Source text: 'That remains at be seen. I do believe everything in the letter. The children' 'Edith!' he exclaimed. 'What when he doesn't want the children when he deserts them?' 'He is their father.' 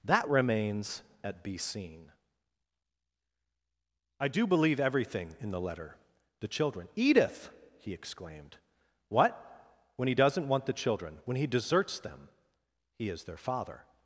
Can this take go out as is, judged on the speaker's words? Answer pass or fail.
pass